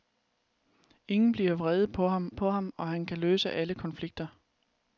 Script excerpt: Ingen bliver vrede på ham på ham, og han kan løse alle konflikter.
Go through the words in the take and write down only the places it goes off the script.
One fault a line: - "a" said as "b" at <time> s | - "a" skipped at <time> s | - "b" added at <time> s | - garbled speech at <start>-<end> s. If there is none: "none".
none